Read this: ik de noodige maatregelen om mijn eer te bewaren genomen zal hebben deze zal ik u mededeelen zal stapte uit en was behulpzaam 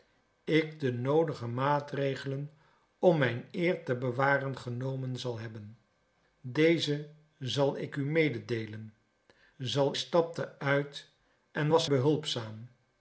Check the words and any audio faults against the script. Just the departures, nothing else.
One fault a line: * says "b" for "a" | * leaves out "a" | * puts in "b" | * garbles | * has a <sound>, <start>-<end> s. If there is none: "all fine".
all fine